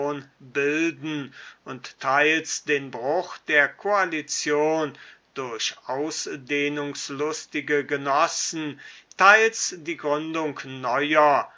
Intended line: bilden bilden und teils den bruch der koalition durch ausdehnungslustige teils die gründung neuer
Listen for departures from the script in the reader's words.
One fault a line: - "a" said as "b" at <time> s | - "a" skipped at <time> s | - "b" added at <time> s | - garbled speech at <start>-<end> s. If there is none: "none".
- "bilden" skipped at 1.3 s
- "genossen" added at 7.8 s